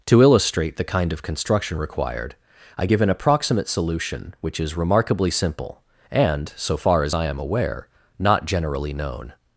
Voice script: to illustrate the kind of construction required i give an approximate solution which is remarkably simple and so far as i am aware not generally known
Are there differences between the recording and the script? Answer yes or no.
no